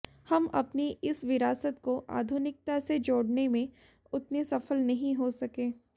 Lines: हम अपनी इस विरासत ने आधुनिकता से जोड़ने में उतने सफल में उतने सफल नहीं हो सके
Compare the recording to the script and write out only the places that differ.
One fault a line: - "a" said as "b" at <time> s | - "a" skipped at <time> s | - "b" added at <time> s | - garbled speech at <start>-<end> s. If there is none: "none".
- "ने" said as "को" at 1.8 s
- "में उतने सफल" skipped at 4.8 s